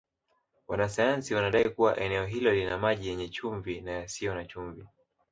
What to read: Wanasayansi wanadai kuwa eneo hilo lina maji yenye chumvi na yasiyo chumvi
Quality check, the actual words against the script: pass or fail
fail